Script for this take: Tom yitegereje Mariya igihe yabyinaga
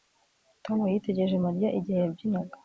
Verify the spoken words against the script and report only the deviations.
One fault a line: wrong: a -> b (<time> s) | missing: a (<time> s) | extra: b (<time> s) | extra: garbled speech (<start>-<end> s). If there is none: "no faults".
no faults